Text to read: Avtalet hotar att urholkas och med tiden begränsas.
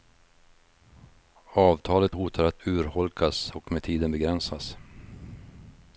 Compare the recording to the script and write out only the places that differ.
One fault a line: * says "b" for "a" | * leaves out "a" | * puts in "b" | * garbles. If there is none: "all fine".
all fine